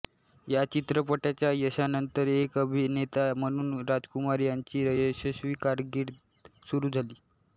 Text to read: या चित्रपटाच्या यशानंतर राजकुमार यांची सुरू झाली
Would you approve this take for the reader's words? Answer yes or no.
no